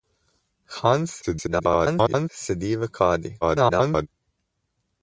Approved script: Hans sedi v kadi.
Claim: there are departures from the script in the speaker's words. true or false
true